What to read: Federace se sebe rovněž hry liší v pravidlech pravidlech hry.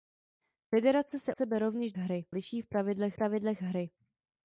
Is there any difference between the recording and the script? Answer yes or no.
no